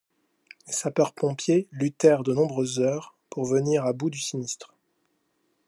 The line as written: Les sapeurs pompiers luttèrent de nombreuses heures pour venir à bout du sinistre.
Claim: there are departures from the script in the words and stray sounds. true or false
false